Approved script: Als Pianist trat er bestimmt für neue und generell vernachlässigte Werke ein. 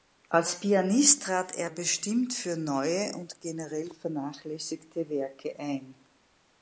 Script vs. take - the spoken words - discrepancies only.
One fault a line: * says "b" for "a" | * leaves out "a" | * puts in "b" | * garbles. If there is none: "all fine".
all fine